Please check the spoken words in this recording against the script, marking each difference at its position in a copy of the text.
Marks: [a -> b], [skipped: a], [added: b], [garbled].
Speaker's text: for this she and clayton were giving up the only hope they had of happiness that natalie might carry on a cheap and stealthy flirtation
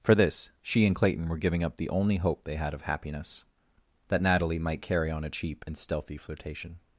for this she and clayton were giving up the only hope they had of happiness that natalie might carry on a cheap and stealthy flirtation